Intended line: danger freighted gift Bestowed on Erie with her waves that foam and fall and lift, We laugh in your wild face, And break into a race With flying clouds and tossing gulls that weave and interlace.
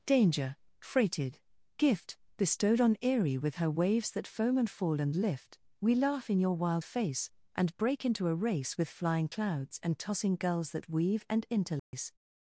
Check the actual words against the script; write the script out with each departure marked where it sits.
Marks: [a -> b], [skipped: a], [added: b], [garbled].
danger freighted gift Bestowed on Erie with her waves that foam and fall and lift, We laugh in your wild face, And break into a race With flying clouds and tossing gulls that weave and interlace.